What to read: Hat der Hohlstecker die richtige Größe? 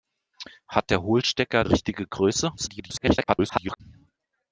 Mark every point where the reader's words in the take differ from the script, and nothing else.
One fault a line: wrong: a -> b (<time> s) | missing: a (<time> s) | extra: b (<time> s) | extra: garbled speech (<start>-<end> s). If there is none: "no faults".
missing: die (1.6 s)
extra: garbled speech (2.6-3.8 s)